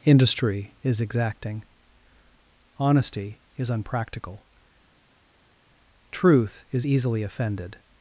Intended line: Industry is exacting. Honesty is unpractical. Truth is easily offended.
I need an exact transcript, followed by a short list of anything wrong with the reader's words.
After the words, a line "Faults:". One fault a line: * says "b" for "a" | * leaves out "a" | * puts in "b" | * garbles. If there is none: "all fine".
Industry is exacting. Honesty is unpractical. Truth is easily offended.
Faults:
all fine